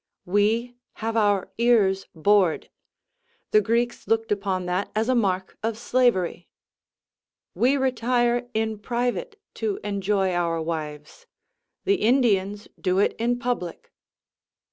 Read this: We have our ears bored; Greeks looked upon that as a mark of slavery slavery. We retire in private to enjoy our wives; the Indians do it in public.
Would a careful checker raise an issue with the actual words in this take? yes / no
yes